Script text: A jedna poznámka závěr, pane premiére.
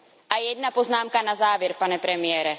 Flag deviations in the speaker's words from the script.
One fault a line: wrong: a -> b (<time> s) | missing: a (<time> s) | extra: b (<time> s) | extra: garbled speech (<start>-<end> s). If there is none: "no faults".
extra: na (1.2 s)